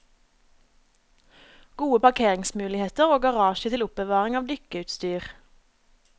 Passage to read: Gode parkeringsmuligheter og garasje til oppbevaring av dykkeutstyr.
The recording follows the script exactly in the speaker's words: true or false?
true